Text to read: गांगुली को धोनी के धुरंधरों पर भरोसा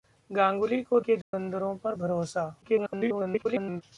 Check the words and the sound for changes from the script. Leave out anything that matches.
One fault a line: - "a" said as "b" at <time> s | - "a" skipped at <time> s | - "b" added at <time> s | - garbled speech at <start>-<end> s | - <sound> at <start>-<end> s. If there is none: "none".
- "धोनी" skipped at 1.0 s
- dropout at 1.2-1.3 s
- garbled speech at 2.6-3.8 s